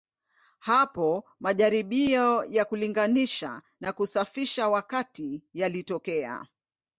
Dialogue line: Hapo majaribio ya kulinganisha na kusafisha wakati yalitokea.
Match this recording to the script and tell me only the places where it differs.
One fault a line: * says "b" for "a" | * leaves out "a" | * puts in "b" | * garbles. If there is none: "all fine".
all fine